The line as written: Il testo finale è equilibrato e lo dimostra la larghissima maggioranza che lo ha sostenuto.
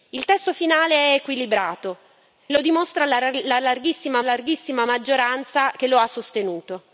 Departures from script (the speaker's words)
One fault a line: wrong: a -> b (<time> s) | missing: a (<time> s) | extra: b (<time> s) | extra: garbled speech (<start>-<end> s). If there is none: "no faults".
missing: e (2.0 s)
extra: larghissima (4.2 s)